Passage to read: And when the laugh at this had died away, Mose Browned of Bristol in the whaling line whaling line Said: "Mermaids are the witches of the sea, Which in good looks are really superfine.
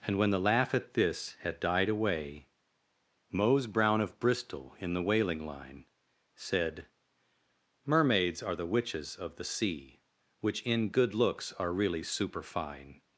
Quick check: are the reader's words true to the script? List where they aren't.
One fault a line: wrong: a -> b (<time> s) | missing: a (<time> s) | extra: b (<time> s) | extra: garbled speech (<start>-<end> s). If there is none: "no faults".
wrong: Browned -> Brown (3.7 s)
missing: whaling line (5.8 s)